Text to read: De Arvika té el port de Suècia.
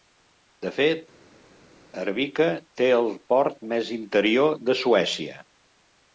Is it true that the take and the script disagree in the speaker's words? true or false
true